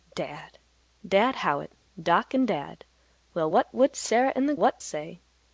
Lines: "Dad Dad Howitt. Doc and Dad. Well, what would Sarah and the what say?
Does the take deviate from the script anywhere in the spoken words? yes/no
no